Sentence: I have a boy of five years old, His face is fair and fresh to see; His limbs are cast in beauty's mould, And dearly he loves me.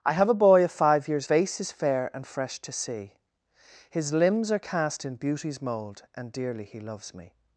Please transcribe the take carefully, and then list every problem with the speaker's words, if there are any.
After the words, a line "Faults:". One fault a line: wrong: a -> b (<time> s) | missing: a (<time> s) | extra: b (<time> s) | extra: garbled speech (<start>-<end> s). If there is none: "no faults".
I have a boy of five years face is fair and fresh to see; His limbs are cast in beauty's mould, And dearly he loves me.
Faults:
missing: old His (1.3 s)